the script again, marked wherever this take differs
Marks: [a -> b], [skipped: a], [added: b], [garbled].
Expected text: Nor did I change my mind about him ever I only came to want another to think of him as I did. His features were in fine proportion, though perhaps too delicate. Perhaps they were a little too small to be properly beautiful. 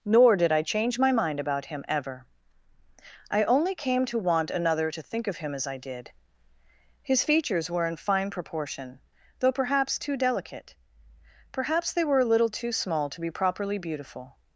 Nor did I change my mind about him ever I only came to want another to think of him as I did. His features were in fine proportion, though perhaps too delicate. Perhaps they were a little too small to be properly beautiful.